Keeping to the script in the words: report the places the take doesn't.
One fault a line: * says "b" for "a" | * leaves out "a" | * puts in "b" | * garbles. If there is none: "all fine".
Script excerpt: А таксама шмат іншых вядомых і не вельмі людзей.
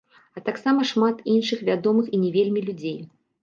all fine